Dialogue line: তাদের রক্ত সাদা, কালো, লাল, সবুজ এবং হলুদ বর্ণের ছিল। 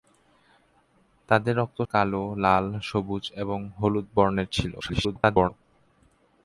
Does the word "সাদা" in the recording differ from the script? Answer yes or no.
yes